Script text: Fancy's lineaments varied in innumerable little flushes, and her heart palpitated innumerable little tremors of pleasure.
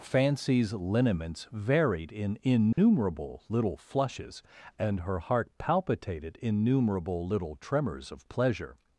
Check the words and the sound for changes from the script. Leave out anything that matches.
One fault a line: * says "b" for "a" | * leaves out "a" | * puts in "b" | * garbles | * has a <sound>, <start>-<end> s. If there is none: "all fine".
* has a dropout, 2.7-2.8 s